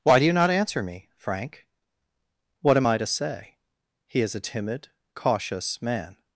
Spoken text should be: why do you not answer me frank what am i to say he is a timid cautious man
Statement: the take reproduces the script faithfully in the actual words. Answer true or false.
true